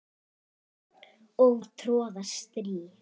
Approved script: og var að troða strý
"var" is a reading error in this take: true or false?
true